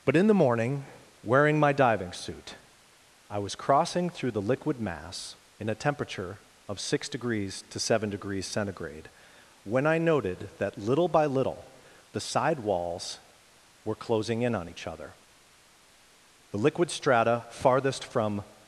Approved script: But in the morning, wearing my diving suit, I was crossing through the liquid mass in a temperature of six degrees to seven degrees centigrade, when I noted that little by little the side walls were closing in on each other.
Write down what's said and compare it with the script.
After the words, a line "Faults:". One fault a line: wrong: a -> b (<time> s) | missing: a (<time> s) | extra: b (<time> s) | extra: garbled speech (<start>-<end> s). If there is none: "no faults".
But in the morning, wearing my diving suit, I was crossing through the liquid mass in a temperature of six degrees to seven degrees centigrade, when I noted that little by little the side walls were closing in on each other. The liquid strata farthest from
Faults:
extra: The liquid strata farthest from (16.5 s)